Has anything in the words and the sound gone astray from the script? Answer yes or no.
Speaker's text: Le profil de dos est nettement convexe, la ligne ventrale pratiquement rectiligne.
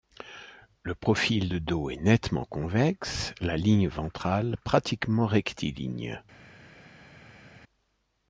no